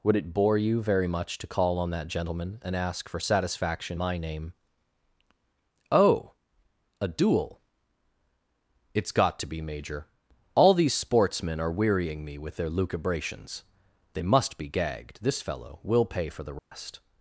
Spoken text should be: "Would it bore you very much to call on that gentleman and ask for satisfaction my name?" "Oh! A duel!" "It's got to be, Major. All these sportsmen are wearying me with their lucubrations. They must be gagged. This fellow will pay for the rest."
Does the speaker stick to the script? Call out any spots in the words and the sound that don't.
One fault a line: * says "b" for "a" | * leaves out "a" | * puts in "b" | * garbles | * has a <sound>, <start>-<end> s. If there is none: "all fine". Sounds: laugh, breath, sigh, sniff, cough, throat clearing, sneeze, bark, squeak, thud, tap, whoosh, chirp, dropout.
* has a dropout, 16.6-16.7 s